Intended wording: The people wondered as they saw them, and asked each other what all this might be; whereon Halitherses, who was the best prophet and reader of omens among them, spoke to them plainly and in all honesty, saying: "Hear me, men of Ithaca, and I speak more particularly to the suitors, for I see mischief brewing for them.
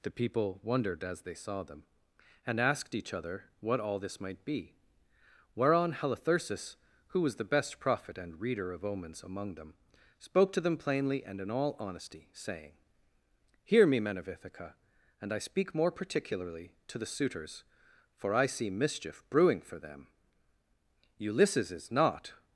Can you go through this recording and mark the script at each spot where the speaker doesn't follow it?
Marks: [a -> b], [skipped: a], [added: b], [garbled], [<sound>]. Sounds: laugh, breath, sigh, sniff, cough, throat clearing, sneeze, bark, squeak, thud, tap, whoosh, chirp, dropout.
The people wondered as they saw them, and asked each other what all this might be; whereon Halitherses, who was the best prophet and reader of omens among them, spoke to them plainly and in all honesty, saying: "Hear me, men of Ithaca, and I speak more particularly to the suitors, for I see mischief brewing for them. [added: Ulysses is not]